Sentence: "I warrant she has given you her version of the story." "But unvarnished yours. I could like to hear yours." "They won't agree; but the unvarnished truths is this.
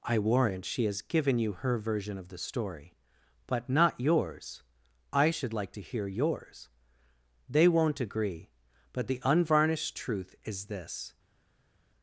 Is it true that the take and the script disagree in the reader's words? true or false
true